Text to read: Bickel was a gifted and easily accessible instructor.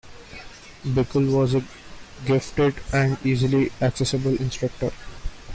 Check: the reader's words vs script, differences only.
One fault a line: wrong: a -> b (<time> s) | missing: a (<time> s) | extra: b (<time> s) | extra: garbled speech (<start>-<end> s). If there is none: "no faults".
no faults